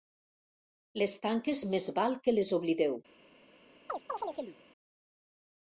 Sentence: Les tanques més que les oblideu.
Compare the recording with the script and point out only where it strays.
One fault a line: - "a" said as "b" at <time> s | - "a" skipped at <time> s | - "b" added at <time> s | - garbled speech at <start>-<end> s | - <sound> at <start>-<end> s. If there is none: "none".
- "val" added at 2.0 s
- chirp at 3.9-4.6 s